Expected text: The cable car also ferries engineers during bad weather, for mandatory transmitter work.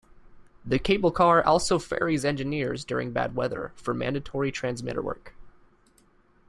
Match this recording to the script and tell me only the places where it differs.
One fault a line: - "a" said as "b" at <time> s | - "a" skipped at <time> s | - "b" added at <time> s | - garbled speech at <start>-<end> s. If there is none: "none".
none